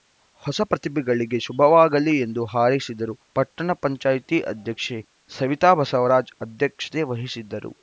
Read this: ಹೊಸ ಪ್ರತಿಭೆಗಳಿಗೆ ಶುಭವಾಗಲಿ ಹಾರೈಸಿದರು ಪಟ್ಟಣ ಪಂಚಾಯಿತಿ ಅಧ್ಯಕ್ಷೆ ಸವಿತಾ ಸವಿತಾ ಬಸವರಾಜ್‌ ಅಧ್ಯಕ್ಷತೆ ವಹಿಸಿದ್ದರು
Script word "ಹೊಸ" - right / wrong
right